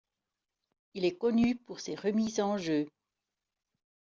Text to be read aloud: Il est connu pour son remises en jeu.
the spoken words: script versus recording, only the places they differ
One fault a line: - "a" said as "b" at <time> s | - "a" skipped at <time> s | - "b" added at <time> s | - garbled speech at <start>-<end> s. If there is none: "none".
- "son" said as "ses" at 1.8 s